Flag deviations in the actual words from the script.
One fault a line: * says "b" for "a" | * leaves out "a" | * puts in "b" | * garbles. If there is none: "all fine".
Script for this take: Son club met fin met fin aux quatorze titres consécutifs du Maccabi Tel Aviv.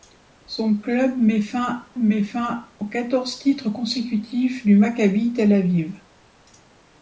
all fine